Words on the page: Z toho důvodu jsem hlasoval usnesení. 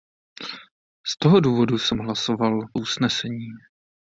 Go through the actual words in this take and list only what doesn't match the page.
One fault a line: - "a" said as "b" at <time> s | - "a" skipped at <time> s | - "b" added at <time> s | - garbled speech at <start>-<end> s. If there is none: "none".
none